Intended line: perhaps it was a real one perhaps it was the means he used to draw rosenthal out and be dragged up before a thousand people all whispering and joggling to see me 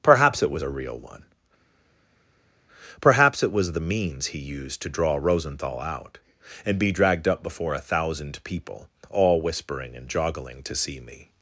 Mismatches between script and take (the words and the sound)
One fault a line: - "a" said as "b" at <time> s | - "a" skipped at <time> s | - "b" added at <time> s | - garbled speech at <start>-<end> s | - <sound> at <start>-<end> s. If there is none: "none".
none